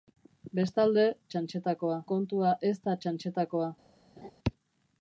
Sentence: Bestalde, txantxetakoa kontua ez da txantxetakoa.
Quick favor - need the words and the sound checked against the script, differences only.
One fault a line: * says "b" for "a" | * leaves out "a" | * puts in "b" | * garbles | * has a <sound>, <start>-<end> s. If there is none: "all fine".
* has a laugh, 4.2-4.3 s